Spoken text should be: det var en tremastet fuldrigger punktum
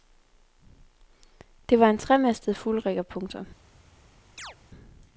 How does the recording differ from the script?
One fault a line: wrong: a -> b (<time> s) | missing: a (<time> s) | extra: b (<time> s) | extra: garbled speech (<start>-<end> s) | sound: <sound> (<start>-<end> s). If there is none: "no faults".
sound: chirp (4.4-4.6 s)